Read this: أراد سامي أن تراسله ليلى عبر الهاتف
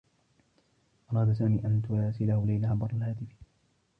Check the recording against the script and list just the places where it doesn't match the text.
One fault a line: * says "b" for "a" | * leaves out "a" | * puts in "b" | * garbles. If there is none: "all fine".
all fine